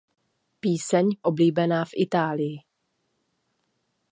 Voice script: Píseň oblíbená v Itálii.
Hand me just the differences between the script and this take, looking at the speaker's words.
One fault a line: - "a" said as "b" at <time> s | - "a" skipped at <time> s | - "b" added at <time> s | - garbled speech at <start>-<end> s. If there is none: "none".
none